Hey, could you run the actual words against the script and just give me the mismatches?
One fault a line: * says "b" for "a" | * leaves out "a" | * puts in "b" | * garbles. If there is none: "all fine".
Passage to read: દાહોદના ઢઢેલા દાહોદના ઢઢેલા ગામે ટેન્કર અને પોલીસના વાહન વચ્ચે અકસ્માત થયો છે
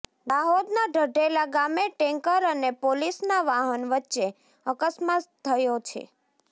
* leaves out "દાહોદના ઢઢેલા"